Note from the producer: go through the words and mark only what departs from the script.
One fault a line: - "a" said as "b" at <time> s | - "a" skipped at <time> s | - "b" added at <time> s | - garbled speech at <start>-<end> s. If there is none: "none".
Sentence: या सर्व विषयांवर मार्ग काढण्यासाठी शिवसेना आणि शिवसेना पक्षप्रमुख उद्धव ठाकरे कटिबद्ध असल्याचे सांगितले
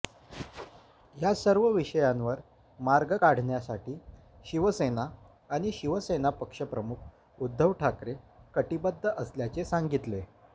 none